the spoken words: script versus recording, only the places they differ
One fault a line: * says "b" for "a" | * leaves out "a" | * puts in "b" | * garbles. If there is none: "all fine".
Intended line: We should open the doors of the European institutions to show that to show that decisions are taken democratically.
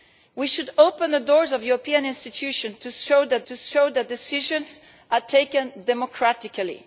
all fine